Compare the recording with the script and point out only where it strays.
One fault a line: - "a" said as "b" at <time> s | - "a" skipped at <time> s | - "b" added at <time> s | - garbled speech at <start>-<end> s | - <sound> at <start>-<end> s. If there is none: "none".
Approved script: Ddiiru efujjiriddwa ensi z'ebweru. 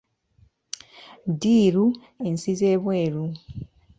- "efujjiriddwa" skipped at 1.9 s